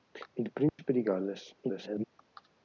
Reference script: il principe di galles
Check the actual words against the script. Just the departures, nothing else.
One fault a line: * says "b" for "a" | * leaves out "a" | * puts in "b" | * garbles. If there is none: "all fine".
* garbles